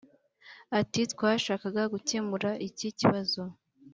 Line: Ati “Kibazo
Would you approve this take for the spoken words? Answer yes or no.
no